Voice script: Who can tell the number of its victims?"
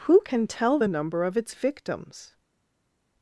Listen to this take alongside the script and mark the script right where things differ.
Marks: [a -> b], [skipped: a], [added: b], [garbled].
Who can tell the number of its victims?"